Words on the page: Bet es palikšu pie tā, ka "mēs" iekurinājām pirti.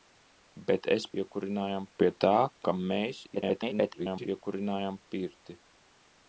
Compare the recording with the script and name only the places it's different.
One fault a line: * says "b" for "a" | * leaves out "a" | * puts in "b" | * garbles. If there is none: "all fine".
* says "iekurinājām" for "palikšu"
* garbles